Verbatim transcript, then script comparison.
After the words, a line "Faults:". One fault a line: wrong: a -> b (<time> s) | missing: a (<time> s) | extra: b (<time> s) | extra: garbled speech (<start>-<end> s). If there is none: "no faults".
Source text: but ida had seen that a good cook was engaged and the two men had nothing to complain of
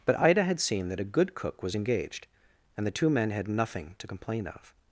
but ida had seen that a good cook was engaged and the two men had nothing to complain of
Faults:
no faults